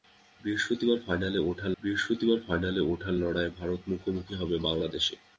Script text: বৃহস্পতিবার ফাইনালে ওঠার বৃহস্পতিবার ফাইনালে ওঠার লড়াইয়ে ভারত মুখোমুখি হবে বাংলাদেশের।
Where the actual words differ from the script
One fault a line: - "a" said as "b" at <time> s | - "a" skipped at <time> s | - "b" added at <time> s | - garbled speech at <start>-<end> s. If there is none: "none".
none